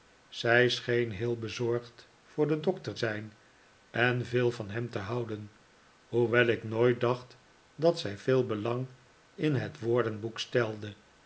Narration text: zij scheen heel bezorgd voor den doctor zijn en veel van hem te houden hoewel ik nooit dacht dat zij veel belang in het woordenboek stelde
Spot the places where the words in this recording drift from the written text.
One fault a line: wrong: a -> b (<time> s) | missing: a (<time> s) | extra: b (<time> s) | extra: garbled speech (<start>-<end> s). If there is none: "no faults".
no faults